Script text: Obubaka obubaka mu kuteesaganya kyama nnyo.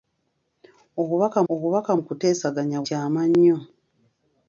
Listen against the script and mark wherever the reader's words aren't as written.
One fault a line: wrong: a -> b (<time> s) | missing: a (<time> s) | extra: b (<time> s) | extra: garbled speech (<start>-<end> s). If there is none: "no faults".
no faults